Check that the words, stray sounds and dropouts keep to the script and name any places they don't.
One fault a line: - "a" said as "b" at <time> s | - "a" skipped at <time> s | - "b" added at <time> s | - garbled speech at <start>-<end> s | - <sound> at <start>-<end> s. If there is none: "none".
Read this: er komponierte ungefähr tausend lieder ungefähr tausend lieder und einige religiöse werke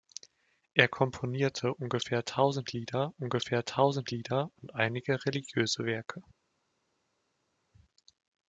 none